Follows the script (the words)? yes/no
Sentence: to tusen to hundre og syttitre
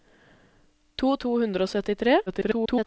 no